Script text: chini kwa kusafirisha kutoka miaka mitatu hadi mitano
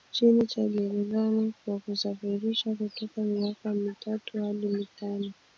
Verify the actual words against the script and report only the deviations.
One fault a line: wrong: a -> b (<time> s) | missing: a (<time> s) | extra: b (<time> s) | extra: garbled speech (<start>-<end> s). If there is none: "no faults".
extra: cha gerezani (0.5 s)